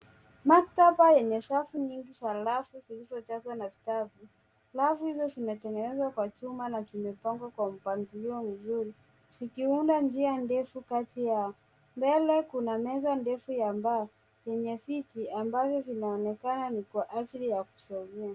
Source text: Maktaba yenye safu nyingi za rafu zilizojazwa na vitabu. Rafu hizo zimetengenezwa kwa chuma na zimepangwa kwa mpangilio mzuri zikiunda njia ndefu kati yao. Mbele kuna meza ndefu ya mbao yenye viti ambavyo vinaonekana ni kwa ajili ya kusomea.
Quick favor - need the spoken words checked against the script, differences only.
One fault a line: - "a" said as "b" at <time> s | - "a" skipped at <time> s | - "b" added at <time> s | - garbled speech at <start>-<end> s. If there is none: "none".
none